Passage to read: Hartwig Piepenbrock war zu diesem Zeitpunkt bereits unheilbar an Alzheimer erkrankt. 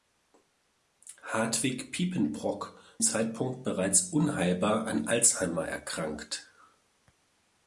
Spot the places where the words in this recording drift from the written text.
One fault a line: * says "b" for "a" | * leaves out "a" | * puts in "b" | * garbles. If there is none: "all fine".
* leaves out "war zu diesem"